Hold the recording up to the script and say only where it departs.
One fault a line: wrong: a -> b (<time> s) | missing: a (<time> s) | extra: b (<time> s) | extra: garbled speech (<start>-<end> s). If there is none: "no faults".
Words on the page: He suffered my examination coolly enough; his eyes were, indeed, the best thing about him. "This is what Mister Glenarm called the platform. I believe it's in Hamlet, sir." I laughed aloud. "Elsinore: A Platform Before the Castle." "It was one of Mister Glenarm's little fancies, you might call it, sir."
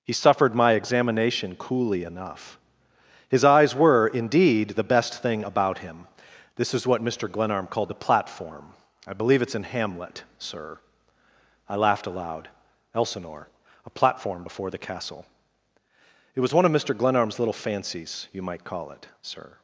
no faults